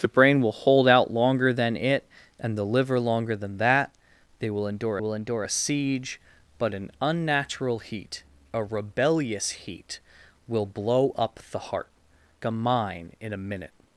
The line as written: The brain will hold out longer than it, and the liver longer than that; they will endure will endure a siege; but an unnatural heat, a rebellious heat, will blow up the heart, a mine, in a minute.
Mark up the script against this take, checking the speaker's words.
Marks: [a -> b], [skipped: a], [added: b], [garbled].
The brain will hold out longer than it, and the liver longer than that; they will endure will endure a siege; but an unnatural heat, a rebellious heat, will blow up the heart, a mine, in a minute.